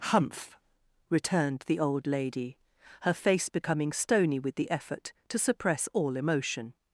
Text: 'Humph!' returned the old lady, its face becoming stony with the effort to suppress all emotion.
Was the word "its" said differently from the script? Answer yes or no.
yes